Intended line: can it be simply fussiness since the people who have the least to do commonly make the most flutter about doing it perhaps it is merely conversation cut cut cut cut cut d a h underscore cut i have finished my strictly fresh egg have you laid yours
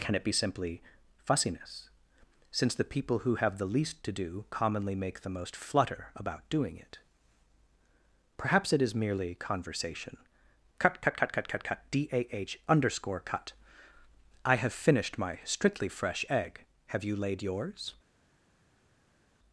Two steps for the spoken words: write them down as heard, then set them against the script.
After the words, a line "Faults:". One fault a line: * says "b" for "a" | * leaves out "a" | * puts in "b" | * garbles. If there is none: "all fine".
can it be simply fussiness since the people who have the least to do commonly make the most flutter about doing it perhaps it is merely conversation cut cut cut cut cut cut d a h underscore cut i have finished my strictly fresh egg have you laid yours
Faults:
* puts in "cut"